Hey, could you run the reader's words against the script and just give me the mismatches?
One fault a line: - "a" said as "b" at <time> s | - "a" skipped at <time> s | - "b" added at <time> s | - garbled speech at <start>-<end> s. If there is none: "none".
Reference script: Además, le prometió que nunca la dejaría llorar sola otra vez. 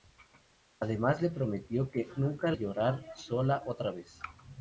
- "la dejaría" skipped at 2.5 s